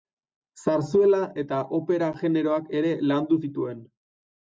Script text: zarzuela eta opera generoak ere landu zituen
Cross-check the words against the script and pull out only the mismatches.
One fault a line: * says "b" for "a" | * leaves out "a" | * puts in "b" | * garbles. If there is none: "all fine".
all fine